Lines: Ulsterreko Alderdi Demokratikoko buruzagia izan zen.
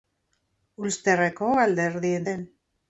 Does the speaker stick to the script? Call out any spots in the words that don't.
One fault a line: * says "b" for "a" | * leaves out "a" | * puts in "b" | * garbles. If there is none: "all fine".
* leaves out "Demokratikoko buruzagia izan"